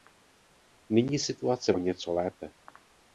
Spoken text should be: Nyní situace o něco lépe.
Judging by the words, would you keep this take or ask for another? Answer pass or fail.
pass